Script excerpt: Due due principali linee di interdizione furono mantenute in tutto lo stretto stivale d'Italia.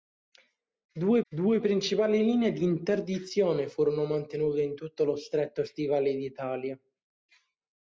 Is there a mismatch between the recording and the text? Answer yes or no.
no